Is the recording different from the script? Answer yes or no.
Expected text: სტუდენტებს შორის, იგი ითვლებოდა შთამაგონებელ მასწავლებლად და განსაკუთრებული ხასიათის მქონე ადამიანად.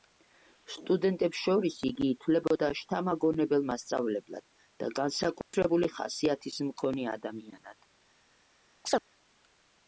no